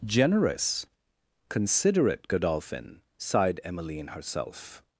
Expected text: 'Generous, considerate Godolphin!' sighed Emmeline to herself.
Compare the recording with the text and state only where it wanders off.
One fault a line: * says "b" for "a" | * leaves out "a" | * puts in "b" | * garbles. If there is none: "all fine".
* leaves out "to"